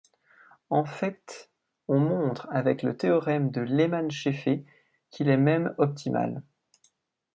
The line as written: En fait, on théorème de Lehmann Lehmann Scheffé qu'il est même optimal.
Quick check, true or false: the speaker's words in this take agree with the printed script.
false